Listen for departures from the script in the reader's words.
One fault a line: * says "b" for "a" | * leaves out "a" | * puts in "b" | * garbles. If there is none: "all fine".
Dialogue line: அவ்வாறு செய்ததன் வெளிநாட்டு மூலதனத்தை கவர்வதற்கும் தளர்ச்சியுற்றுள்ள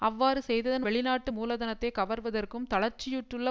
all fine